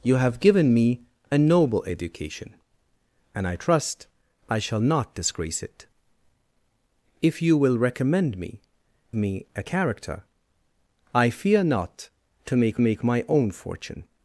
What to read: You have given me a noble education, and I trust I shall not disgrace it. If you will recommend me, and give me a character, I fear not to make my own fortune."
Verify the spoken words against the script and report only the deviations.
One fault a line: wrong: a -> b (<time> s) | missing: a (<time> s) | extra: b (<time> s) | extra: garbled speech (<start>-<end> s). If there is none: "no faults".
missing: and give (8.6 s)
extra: make (12.8 s)